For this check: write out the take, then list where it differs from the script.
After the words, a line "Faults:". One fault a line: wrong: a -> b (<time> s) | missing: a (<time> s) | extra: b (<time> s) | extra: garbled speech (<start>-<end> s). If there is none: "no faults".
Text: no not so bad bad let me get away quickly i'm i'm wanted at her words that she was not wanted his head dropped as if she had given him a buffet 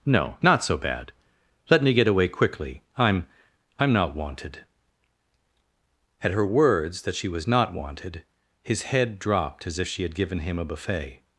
no not so bad let me get away quickly i'm i'm not wanted at her words that she was not wanted his head dropped as if she had given him a buffet
Faults:
missing: bad (1.1 s)
extra: not (3.9 s)